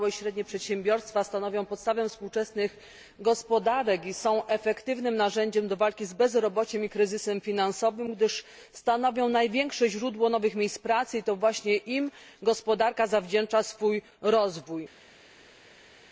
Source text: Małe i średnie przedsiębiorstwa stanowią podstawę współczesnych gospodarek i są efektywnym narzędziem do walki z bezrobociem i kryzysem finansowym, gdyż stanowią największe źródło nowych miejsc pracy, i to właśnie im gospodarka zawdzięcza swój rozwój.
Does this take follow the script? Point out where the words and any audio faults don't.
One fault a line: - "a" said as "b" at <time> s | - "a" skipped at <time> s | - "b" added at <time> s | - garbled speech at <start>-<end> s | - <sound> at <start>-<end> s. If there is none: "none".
none